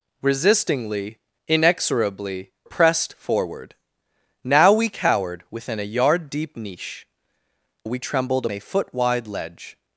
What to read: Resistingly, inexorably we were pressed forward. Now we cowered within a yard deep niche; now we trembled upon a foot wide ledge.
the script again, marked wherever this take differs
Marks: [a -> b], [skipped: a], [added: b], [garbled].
Resistingly, inexorably [skipped: we were] pressed forward. Now we cowered within a yard deep niche; [skipped: now] we trembled [skipped: upon] a foot wide ledge.